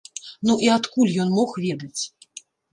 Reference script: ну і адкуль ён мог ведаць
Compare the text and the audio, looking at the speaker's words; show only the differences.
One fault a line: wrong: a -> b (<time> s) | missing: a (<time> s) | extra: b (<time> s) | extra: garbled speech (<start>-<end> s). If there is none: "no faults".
no faults